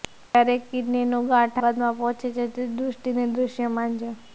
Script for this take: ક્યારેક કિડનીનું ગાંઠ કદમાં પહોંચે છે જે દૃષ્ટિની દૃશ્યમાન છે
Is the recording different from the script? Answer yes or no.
no